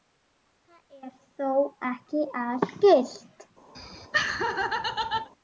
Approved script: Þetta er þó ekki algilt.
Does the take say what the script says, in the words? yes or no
yes